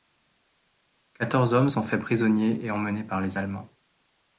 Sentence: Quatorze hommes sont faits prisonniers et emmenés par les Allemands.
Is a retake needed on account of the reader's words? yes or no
no